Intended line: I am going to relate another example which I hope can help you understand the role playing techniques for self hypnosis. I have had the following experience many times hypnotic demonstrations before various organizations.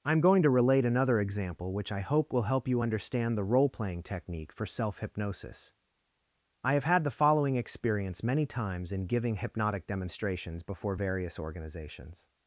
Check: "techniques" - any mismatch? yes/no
yes